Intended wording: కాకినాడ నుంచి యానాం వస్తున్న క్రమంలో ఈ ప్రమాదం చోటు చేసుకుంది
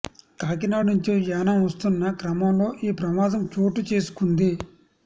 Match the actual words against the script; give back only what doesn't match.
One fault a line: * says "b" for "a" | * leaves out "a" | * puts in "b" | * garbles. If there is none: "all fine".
all fine